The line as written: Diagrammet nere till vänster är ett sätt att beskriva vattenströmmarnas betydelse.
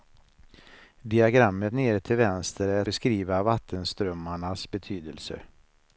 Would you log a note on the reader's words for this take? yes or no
yes